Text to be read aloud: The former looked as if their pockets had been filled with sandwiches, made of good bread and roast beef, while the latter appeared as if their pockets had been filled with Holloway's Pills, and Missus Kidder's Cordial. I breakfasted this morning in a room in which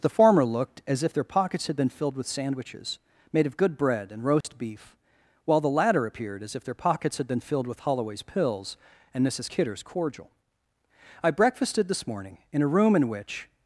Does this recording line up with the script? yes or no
yes